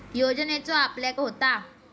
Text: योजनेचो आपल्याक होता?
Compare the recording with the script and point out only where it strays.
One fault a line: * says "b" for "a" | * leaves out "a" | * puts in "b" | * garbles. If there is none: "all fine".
all fine